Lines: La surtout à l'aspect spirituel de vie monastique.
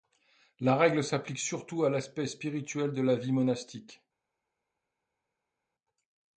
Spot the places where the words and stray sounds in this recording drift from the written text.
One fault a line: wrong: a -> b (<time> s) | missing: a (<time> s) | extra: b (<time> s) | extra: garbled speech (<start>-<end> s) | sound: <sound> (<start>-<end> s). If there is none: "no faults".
extra: règle s'applique (0.8 s)
extra: la (3.0 s)